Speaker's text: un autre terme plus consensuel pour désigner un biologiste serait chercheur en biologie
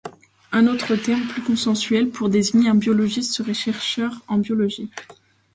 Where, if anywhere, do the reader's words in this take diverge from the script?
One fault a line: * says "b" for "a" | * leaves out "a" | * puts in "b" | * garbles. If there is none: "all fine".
all fine